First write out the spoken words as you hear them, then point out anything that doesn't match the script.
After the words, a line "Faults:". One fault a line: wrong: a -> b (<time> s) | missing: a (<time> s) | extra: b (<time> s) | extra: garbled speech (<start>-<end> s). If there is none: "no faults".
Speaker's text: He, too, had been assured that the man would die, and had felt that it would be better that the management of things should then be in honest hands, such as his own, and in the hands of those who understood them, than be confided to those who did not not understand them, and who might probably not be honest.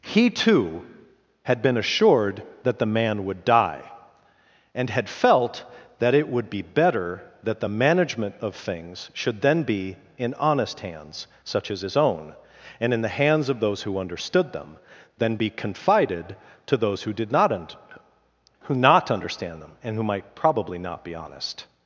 He, too, had been assured that the man would die, and had felt that it would be better that the management of things should then be in honest hands, such as his own, and in the hands of those who understood them, than be confided to those who did not un who not understand them, and who might probably not be honest.
Faults:
extra: un who (17.5 s)